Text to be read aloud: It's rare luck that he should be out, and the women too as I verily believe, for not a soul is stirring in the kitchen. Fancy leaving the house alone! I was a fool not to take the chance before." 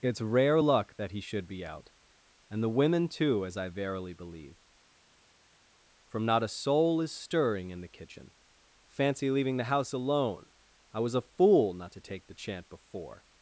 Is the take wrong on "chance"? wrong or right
wrong